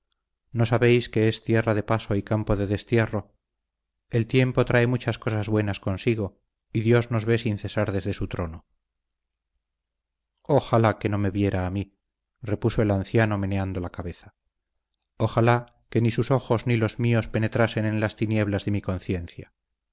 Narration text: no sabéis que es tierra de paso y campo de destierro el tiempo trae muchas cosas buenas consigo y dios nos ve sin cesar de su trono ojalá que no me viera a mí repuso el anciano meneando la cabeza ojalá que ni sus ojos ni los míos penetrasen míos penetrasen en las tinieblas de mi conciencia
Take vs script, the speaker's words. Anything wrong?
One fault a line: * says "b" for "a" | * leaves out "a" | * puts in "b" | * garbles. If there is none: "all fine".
* says "desde" for "de"
* leaves out "míos penetrasen"